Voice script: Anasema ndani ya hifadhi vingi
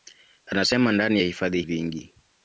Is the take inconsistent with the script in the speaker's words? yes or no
no